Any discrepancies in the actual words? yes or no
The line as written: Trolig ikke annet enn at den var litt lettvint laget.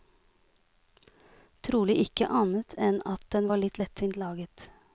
no